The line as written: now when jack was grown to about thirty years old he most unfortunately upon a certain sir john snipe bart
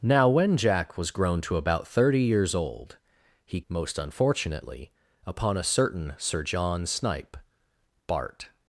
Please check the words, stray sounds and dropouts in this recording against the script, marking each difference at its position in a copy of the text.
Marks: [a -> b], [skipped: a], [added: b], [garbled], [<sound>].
now when jack was grown to about thirty years old he most unfortunately upon a certain sir john snipe bart